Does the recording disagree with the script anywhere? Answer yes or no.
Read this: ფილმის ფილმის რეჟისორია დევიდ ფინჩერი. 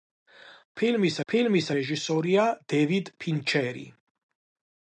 no